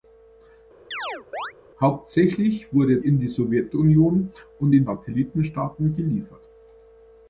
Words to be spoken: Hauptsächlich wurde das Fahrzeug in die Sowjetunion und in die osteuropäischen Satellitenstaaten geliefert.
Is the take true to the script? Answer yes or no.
no